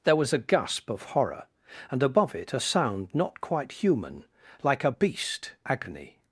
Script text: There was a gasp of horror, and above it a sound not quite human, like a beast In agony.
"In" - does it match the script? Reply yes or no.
no